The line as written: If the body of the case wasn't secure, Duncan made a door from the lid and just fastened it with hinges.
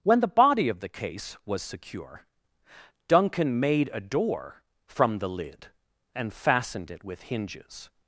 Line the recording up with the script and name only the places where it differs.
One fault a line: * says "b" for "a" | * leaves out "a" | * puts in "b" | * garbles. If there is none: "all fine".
* says "When" for "If"
* says "was" for "wasn't"
* leaves out "just"